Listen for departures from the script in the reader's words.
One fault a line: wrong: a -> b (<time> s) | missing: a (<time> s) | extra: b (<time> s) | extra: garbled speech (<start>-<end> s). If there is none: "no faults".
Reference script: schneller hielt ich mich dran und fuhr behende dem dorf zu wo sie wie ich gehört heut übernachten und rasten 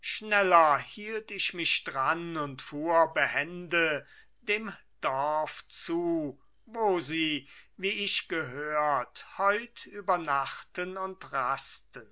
no faults